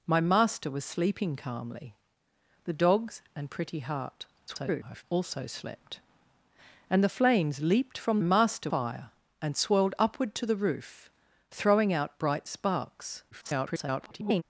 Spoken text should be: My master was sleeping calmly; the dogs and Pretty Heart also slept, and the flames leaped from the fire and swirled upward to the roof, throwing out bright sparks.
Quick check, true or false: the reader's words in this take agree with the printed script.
false